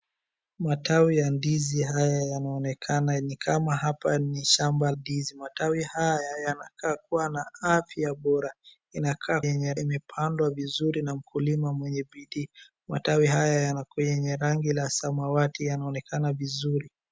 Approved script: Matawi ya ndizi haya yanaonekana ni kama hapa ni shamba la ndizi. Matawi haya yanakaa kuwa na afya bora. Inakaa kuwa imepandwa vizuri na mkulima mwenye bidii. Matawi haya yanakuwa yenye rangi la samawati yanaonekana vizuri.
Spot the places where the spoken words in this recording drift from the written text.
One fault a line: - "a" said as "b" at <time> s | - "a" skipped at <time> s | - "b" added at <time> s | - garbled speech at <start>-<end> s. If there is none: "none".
- "la" skipped at 4.9 s
- "kuwa" said as "yenye" at 9.4 s